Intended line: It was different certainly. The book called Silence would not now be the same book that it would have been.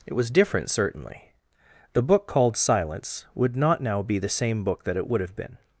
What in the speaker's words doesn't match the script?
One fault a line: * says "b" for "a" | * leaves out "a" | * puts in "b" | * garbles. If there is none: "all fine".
all fine